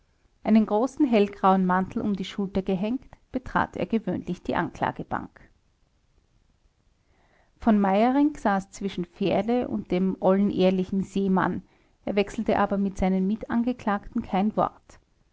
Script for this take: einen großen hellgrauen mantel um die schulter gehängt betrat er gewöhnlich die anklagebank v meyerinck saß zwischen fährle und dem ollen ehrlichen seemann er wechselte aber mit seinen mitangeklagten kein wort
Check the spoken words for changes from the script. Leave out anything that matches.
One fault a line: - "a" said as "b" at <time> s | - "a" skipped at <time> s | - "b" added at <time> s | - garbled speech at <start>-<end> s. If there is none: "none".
none